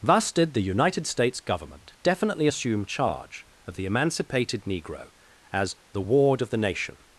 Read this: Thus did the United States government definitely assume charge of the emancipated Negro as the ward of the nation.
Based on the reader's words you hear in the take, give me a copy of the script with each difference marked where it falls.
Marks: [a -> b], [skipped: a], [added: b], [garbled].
Thus did the United States government definitely assume charge of the emancipated Negro as the ward of the nation.